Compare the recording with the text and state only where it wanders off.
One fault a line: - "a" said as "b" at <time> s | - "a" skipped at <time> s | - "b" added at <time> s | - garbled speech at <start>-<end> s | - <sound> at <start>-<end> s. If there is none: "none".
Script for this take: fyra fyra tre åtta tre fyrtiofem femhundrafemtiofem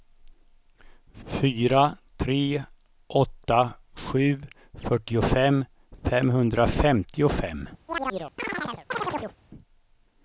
- "fyra" skipped at 2.0 s
- "tre" said as "sju" at 3.9 s
- chirp at 7.9-9.4 s